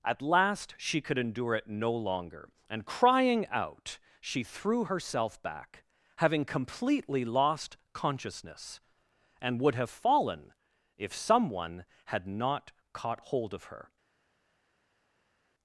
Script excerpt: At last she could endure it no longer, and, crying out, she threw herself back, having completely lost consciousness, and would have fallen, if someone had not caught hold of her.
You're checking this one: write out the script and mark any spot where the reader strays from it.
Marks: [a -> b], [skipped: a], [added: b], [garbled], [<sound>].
At last she could endure it no longer, and, crying out, she threw herself back, having completely lost consciousness, and would have fallen, if someone had not caught hold of her.